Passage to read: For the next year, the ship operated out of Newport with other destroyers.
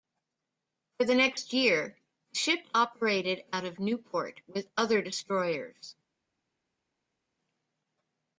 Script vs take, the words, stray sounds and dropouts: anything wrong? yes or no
no